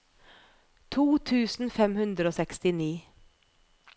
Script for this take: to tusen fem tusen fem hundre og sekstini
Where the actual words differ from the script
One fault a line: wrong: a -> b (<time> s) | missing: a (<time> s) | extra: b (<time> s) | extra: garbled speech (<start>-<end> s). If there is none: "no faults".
missing: tusen fem (2.0 s)